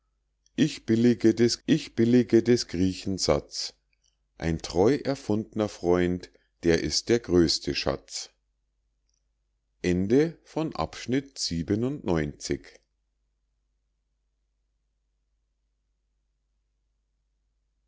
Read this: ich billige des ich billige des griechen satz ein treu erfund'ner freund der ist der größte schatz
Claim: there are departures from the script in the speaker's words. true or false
false